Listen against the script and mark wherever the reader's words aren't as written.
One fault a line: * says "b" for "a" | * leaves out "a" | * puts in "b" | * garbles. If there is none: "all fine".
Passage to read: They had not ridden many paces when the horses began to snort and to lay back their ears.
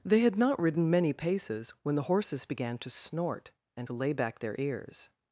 all fine